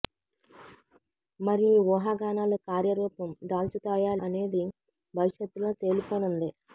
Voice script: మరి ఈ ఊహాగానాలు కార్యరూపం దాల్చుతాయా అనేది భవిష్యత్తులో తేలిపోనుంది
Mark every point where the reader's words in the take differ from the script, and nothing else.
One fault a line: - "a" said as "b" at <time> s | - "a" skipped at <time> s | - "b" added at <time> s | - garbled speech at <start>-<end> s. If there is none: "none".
none